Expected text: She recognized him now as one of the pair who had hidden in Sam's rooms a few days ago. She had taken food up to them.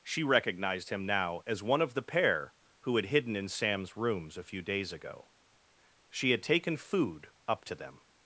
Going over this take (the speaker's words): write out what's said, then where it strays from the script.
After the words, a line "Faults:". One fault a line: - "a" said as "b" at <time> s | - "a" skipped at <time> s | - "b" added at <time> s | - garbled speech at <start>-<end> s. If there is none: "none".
She recognized him now as one of the pair who had hidden in Sam's rooms a few days ago. She had taken food up to them.
Faults:
none